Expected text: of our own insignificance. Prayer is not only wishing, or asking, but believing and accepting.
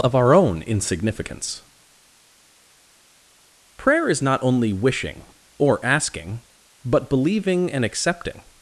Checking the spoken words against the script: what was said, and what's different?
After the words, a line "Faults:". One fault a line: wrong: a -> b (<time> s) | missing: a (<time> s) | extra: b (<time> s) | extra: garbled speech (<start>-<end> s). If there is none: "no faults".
of our own insignificance. Prayer is not only wishing, or asking, but believing and accepting.
Faults:
no faults